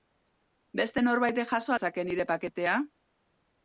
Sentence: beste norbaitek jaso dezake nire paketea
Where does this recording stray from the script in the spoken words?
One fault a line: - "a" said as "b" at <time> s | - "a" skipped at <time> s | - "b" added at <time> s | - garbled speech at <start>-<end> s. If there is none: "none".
none